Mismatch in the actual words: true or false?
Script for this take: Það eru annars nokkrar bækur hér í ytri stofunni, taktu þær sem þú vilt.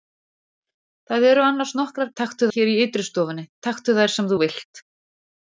true